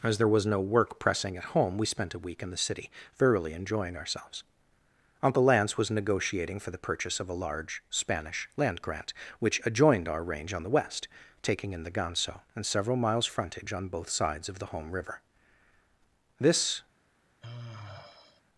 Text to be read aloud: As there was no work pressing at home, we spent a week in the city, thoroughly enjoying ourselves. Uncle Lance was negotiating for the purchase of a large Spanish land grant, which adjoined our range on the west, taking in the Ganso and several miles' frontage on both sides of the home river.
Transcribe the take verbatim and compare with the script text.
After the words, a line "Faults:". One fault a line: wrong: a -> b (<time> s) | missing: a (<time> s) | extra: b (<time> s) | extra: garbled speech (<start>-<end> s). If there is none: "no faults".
As there was no work pressing at home, we spent a week in the city, thoroughly enjoying ourselves. Uncle Lance was negotiating for the purchase of a large Spanish land grant, which adjoined our range on the west, taking in the Ganso and several miles' frontage on both sides of the home river. This
Faults:
extra: This (16.4 s)